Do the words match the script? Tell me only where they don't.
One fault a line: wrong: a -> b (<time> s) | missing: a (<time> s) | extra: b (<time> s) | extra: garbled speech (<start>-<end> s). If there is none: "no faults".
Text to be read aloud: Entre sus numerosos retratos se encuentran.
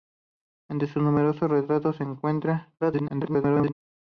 extra: garbled speech (2.8-3.7 s)